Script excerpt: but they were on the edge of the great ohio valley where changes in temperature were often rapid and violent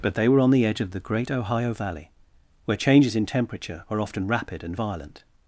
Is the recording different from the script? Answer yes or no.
yes